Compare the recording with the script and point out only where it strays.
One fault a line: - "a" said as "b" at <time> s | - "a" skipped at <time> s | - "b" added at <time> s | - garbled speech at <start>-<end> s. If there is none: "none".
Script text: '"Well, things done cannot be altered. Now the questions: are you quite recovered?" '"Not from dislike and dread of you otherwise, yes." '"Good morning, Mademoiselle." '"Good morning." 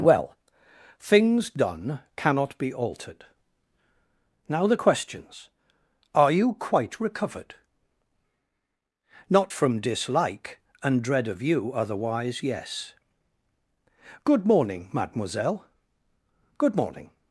none